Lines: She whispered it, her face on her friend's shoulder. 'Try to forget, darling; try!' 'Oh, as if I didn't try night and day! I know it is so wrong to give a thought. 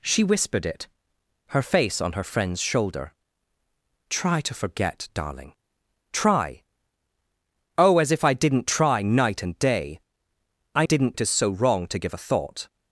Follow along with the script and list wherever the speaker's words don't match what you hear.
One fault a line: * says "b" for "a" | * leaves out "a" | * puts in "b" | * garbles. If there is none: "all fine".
* says "didn't" for "know"